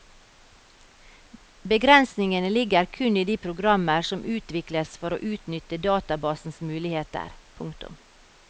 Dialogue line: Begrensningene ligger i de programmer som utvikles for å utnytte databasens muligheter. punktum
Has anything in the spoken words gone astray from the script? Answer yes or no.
yes